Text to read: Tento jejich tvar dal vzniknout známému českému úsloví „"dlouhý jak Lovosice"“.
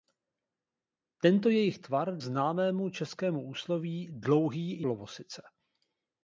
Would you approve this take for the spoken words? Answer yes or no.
no